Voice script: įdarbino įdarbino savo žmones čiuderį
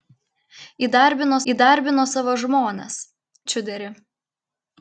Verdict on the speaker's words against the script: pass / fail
pass